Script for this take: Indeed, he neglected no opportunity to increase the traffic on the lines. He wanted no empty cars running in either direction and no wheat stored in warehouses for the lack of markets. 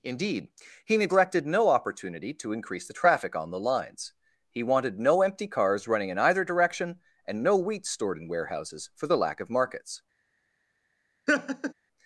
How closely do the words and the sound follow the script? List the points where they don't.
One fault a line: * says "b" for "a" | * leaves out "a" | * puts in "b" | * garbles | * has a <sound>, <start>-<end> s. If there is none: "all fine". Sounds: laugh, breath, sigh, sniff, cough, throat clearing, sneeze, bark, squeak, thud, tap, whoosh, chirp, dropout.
* has a laugh, 11.3-11.7 s